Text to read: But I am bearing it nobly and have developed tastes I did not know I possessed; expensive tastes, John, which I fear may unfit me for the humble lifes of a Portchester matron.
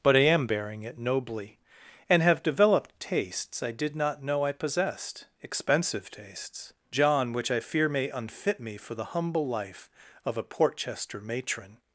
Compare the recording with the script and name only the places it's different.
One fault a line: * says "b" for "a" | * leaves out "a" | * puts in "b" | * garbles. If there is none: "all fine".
* says "life" for "lifes"